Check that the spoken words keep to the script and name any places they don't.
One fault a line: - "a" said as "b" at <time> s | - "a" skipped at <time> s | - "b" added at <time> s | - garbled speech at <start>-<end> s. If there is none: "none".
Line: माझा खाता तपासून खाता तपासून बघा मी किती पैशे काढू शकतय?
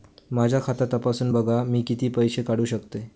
- "खाता तपासून" skipped at 1.3 s